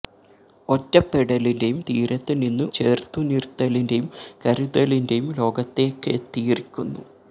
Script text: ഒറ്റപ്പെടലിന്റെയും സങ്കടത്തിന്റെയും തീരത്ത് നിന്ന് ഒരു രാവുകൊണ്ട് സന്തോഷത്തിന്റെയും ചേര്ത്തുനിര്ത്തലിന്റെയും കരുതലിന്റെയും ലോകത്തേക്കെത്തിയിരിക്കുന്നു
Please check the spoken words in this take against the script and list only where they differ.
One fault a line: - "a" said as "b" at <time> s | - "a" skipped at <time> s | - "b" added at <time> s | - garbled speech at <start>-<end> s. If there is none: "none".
- "സങ്കടത്തിന്റെയും" skipped at 1.8 s
- "ഒരു രാവുകൊണ്ട് സന്തോഷത്തിന്റെയും" skipped at 2.6 s